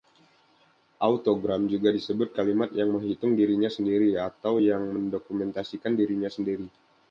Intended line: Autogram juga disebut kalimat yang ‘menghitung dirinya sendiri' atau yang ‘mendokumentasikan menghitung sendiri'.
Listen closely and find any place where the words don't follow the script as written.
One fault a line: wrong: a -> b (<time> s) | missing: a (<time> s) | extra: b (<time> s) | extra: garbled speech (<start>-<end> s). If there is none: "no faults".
wrong: menghitung -> dirinya (5.9 s)